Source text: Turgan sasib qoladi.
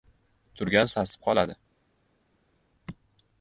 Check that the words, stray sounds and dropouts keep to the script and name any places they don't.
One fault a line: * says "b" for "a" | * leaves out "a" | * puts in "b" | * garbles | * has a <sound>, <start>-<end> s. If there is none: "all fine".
all fine